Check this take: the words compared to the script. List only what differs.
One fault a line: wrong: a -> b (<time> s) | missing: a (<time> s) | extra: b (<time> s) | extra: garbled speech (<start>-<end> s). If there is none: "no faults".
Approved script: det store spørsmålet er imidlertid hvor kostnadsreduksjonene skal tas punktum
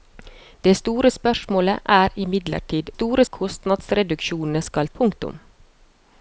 wrong: hvor -> store (2.9 s)
missing: tas (4.9 s)